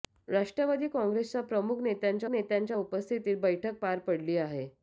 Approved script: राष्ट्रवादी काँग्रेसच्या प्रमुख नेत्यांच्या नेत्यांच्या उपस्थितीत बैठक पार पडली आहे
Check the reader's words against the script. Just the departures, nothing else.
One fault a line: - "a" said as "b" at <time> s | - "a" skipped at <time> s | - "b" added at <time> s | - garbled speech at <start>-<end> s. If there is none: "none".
none